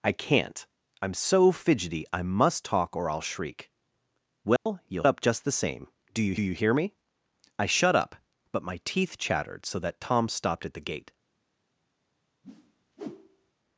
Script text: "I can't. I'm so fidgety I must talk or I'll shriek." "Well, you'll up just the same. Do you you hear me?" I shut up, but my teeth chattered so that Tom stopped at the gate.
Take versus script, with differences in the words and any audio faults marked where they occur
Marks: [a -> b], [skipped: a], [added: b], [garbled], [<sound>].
"I can't. I'm so fidgety I must talk or I'll shriek." "Well, [dropout] you'll up just the same. Do you you hear me?" I shut up, but my teeth chattered so that Tom stopped at the gate. [whoosh]